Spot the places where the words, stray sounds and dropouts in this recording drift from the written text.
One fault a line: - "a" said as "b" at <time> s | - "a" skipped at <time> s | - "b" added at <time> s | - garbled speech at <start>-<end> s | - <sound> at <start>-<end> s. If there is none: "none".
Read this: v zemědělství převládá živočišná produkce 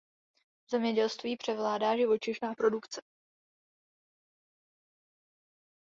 none